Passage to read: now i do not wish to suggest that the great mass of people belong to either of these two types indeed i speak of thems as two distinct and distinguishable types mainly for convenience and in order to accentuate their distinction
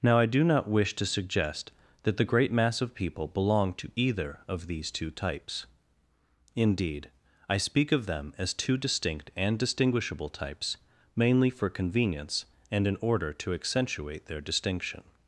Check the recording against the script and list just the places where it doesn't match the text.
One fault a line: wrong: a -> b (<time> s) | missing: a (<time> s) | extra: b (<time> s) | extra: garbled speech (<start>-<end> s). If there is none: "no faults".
wrong: thems -> them (8.1 s)